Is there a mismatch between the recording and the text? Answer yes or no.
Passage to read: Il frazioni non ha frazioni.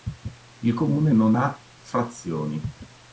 yes